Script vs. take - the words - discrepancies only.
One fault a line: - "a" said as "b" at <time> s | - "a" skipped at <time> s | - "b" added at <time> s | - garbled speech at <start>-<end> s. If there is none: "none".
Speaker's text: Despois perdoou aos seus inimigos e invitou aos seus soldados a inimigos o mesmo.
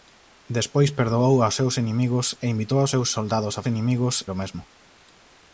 none